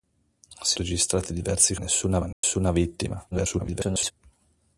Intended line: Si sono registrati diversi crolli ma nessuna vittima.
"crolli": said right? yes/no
no